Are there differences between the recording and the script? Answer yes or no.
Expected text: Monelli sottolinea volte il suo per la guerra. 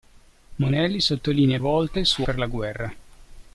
no